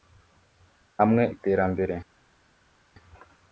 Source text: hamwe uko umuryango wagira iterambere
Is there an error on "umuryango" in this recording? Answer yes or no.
yes